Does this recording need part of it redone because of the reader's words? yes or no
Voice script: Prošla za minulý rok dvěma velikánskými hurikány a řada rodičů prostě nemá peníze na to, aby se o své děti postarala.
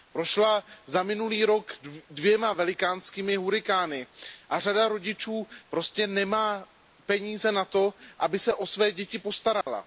no